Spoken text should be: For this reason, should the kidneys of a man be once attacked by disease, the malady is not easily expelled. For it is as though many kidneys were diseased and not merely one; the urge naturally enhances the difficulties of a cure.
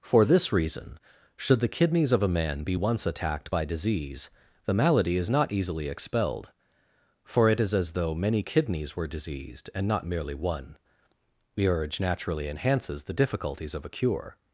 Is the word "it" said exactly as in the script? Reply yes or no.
yes